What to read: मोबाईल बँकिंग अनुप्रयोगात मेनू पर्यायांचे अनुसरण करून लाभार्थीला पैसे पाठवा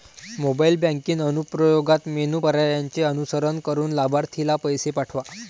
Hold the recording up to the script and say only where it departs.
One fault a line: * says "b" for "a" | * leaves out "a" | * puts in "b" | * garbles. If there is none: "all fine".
all fine